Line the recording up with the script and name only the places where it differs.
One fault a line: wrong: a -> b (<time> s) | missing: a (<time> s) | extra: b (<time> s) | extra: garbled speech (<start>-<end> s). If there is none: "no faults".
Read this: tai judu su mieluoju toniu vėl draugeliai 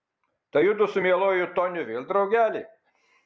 no faults